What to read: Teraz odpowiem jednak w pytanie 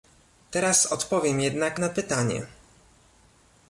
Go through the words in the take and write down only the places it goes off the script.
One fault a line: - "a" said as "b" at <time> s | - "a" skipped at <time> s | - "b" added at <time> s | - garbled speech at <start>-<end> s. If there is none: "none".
- "w" said as "na" at 1.8 s